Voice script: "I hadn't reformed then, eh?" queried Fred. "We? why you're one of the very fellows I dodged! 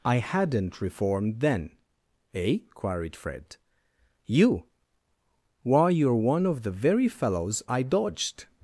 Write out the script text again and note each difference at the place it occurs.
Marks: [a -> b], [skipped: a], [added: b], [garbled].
"I hadn't reformed then, eh?" queried Fred. ["We? -> You] why you're one of the very fellows I dodged!